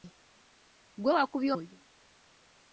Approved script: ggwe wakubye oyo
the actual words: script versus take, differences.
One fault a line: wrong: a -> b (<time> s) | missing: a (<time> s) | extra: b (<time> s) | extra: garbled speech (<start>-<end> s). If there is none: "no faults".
no faults